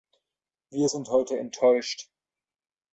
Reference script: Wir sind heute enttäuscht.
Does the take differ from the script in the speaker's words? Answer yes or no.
no